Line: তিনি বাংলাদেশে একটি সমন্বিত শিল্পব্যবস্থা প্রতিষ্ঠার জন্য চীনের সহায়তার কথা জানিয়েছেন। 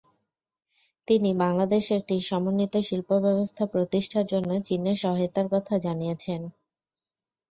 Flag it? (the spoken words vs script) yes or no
no